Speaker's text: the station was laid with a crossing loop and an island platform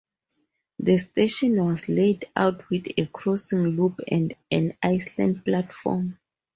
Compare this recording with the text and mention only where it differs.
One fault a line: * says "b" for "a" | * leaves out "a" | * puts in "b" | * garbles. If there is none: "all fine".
* puts in "out"